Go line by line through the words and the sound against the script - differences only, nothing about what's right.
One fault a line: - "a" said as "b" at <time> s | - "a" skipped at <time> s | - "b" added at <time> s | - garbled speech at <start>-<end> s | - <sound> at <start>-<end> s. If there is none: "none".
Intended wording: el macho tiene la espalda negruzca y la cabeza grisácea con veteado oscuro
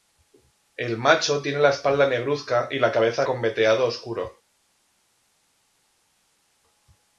- "grisácea" skipped at 3.3 s